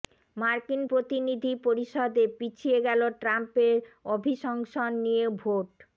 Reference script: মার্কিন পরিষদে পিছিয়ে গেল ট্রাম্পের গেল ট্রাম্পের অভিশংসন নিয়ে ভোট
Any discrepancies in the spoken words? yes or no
yes